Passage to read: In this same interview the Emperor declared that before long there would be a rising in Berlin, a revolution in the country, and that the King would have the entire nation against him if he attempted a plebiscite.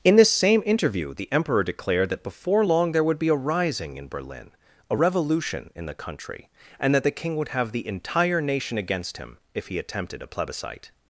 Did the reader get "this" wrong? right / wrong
right